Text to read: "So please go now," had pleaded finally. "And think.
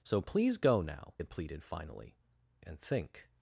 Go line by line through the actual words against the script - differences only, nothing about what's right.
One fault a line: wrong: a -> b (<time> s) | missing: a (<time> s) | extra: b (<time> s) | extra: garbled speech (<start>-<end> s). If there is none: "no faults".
no faults